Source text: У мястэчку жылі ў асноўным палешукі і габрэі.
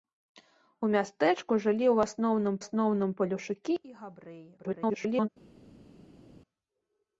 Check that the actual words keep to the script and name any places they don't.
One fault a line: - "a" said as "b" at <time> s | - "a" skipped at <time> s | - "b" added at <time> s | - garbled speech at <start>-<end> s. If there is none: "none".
- "асноўным" added at 2.6 s
- garbled speech at 4.6-5.3 s